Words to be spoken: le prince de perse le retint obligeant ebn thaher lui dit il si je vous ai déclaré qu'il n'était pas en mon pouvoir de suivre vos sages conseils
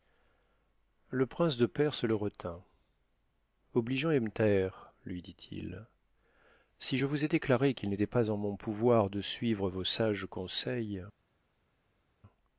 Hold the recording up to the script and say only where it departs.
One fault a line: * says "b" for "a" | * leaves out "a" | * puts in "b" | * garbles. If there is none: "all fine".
all fine